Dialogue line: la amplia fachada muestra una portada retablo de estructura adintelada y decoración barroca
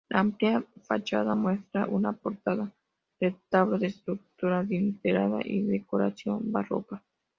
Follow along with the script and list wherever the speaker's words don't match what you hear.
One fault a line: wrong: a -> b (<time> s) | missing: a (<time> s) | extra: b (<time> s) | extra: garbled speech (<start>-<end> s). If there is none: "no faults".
no faults